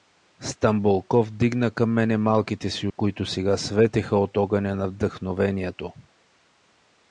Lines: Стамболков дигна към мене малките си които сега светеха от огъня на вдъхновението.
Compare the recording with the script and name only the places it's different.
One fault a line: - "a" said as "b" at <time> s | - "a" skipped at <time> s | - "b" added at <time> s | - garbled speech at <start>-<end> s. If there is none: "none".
none